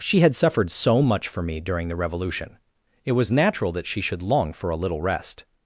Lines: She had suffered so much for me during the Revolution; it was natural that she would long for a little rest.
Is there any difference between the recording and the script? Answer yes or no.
yes